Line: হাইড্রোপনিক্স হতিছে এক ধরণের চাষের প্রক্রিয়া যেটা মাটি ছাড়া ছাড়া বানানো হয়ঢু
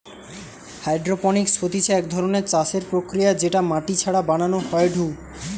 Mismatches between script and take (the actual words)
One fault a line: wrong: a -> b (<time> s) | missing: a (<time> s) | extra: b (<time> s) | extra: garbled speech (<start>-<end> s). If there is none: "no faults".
missing: ছাড়া (4.2 s)